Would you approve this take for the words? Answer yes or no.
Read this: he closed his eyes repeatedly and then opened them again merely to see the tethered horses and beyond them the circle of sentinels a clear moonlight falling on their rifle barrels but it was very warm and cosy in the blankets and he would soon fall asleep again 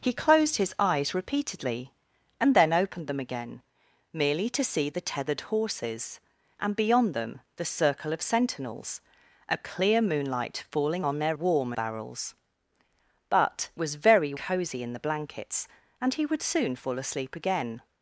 no